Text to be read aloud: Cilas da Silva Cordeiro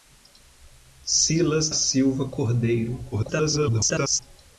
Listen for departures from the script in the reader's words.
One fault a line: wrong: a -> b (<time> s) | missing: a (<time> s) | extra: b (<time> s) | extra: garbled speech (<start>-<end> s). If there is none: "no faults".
missing: da (1.7 s)
extra: garbled speech (3.1-4.2 s)